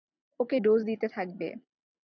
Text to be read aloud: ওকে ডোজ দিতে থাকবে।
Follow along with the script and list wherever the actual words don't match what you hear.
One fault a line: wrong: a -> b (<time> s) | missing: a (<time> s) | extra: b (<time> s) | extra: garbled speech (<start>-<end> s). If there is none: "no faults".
no faults